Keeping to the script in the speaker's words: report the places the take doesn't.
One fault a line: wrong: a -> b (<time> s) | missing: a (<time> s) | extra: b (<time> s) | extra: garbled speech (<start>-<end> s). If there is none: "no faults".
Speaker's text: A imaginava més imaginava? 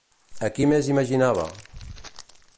wrong: imaginava -> qui (0.5 s)